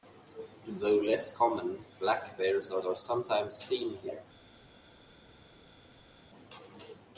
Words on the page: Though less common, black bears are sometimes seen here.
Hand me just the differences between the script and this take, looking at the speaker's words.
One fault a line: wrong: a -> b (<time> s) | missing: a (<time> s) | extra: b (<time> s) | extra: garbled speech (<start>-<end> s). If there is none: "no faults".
extra: are (2.8 s)